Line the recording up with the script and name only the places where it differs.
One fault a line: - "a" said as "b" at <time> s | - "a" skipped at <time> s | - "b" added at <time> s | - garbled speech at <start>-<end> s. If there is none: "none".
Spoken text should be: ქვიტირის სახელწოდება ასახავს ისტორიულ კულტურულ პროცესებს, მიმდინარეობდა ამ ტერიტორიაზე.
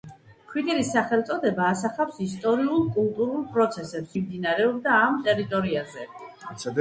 none